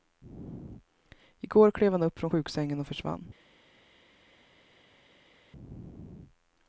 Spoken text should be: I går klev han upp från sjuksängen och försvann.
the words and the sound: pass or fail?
pass